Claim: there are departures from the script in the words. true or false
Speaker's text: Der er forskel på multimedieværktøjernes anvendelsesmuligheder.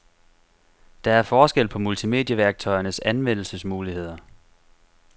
false